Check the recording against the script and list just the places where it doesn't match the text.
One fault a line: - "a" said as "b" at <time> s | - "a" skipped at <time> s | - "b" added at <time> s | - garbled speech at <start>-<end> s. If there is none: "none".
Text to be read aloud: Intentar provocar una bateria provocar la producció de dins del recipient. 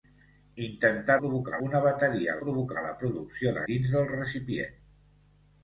none